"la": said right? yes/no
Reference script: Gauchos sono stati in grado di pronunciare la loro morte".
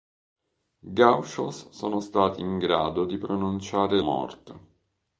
no